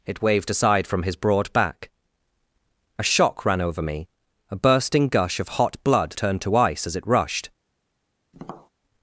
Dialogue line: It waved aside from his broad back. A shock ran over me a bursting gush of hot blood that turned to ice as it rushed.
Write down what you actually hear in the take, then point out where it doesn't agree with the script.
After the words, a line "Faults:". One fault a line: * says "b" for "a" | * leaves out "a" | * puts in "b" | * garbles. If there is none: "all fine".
It waved aside from his broad back. A shock ran over me a bursting gush of hot blood turned to ice as it rushed.
Faults:
* leaves out "that"